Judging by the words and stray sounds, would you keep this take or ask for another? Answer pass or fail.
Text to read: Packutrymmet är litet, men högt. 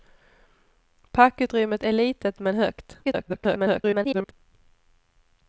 fail